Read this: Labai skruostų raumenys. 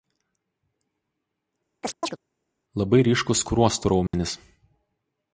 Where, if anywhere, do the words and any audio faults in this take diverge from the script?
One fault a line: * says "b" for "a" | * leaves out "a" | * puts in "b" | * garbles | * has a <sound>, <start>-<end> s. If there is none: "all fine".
* has a chirp, 1.8-2.2 s
* puts in "ryškūs"
* has a dropout, 4.1-4.1 s